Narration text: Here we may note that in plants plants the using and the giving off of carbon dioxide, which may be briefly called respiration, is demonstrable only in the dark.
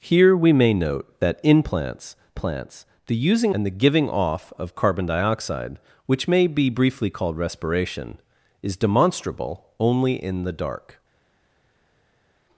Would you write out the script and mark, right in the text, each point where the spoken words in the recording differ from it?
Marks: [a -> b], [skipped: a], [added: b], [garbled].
Here we may note that in plants plants the using and the giving off of carbon dioxide, which may be briefly called respiration, is demonstrable only in the dark.